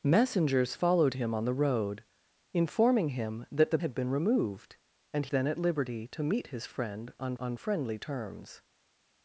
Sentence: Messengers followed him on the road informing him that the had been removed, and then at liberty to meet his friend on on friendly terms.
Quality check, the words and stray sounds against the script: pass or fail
pass